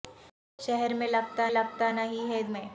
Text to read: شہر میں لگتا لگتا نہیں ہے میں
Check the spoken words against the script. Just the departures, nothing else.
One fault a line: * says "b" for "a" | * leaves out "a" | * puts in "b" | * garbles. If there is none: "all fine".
all fine